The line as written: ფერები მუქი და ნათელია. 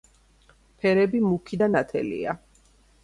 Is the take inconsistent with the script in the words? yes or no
no